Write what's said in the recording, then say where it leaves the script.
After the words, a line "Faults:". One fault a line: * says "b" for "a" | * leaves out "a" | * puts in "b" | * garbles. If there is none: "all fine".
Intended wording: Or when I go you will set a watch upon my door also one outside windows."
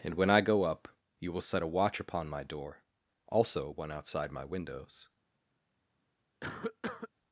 And when I go up you will set a watch upon my door also one outside my windows."
Faults:
* says "And" for "Or"
* puts in "up"
* puts in "my"